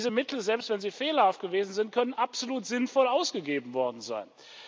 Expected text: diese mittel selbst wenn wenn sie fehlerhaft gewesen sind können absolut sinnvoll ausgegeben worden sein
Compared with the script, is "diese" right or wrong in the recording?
right